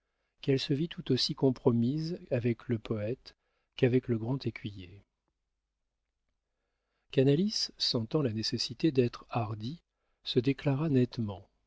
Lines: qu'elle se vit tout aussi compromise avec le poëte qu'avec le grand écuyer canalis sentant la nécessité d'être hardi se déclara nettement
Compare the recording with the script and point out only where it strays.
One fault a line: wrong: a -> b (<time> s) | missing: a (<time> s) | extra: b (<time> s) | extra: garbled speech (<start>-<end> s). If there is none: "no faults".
no faults